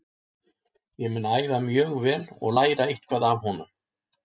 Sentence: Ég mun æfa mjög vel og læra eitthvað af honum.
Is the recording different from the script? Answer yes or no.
no